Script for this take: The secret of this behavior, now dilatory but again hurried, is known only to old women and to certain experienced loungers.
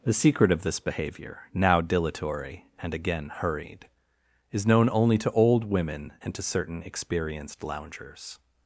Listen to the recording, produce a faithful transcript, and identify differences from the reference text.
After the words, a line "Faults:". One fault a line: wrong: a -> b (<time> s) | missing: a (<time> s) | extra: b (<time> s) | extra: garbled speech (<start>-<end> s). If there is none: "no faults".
The secret of this behavior, now dilatory and again hurried, is known only to old women and to certain experienced loungers.
Faults:
wrong: but -> and (2.8 s)